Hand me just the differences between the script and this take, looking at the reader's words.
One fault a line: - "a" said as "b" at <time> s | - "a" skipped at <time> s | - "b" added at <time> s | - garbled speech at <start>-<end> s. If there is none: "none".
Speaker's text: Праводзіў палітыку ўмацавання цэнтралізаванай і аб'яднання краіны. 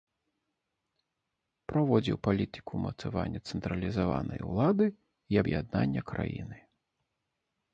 - "улады" added at 4.5 s